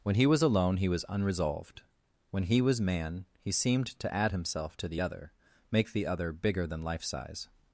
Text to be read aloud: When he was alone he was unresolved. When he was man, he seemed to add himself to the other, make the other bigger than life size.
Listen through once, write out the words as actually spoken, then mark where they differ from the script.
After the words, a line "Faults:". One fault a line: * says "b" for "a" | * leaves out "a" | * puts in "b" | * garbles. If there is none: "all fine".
When he was alone he was unresolved. When he was man, he seemed to add himself to the other, make the other bigger than life size.
Faults:
all fine